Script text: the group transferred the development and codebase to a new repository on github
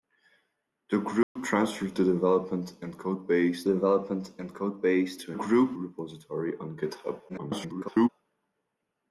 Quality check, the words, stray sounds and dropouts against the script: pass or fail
fail